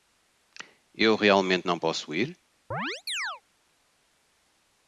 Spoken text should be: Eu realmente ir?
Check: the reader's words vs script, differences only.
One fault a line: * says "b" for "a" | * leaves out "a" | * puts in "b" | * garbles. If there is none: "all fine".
* puts in "não posso"